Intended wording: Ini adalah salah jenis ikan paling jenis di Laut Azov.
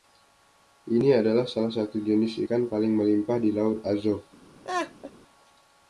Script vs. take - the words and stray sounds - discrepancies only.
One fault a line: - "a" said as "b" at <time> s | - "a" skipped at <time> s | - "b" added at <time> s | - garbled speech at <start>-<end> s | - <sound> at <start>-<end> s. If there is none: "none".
- "satu" added at 1.7 s
- "jenis" said as "melimpah" at 2.9 s
- laugh at 4.6-5.1 s